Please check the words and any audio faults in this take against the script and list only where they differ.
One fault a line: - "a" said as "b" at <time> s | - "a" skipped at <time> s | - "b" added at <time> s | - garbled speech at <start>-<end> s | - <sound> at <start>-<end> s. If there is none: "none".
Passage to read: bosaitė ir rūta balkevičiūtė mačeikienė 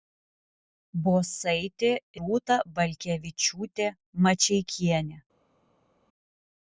- "ir" skipped at 1.9 s